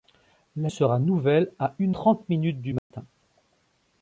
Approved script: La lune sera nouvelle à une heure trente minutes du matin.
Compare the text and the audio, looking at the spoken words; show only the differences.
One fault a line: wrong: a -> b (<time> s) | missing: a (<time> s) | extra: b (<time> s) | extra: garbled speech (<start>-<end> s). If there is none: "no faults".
missing: lune (0.7 s)
missing: heure (2.0 s)